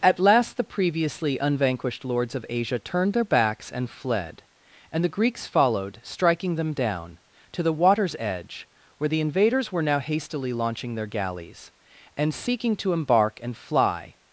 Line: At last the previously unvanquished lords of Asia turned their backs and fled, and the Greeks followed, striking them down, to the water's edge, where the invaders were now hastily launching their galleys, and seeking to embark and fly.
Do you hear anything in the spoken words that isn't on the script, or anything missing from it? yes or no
no